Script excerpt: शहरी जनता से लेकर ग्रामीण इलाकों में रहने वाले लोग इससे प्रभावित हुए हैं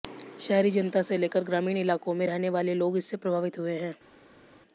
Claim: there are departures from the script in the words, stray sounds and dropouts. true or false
false